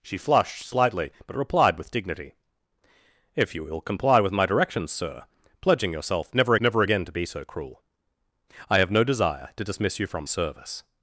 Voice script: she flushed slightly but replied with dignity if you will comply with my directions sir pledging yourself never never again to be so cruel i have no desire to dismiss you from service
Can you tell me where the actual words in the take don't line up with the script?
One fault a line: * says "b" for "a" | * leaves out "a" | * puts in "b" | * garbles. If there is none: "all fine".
all fine